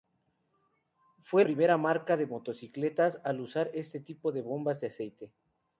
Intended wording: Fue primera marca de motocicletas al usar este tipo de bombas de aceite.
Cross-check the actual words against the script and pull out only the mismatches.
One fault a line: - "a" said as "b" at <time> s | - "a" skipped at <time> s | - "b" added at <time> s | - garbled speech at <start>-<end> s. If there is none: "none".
none